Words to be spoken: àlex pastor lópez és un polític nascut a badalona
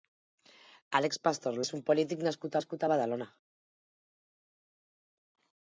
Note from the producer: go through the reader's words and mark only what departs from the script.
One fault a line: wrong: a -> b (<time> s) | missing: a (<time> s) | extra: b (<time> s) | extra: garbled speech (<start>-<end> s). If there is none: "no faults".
missing: lópez (1.6 s)
extra: nascut (2.6 s)